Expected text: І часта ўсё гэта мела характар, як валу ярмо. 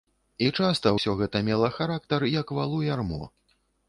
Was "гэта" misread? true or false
false